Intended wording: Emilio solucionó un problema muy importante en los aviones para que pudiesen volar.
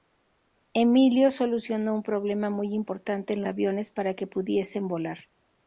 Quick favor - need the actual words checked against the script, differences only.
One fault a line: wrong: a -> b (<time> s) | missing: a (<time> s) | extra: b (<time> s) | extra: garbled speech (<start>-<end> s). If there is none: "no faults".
missing: los (3.4 s)